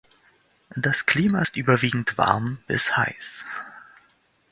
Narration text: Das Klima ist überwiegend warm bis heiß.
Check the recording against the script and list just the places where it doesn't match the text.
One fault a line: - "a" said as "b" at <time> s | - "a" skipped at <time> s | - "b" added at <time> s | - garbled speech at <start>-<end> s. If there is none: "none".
none